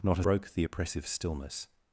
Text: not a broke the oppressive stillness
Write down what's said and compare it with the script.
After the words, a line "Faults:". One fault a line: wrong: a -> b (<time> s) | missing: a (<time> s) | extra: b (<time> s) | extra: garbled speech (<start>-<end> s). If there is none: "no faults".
not a broke the oppressive stillness
Faults:
no faults